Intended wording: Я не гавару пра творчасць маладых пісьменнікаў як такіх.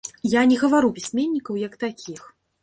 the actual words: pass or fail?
fail